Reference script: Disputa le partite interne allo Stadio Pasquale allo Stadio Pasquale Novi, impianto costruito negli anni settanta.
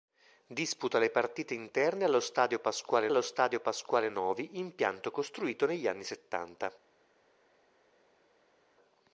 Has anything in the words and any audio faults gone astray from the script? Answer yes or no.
no